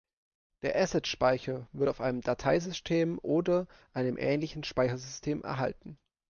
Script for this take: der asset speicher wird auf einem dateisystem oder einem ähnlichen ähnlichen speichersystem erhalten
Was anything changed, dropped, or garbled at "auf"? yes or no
no